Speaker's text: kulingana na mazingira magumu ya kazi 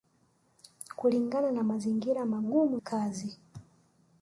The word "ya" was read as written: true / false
false